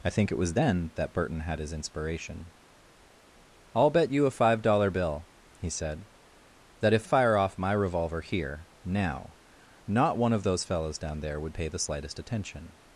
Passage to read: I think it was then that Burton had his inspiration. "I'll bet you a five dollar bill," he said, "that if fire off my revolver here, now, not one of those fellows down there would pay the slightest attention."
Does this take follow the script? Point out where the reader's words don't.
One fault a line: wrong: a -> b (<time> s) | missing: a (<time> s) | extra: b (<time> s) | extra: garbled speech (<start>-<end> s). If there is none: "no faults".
no faults